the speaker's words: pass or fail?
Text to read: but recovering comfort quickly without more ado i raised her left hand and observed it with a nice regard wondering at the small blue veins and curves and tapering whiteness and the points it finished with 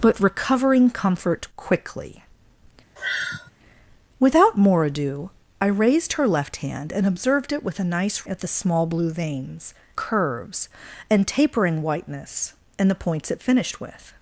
fail